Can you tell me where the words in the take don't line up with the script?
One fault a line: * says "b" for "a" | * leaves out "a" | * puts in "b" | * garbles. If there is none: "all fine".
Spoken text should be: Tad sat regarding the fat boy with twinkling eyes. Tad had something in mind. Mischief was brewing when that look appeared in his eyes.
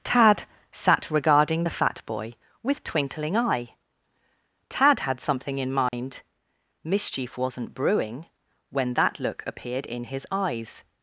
* says "eye" for "eyes"
* says "wasn't" for "was"